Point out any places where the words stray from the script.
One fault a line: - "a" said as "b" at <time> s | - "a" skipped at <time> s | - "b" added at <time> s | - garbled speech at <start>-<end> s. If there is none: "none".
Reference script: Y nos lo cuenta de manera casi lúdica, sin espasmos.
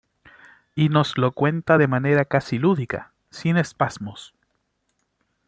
none